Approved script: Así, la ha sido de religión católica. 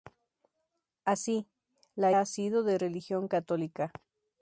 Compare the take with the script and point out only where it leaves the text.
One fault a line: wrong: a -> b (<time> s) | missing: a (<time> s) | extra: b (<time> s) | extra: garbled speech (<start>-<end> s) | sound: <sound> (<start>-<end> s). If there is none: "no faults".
no faults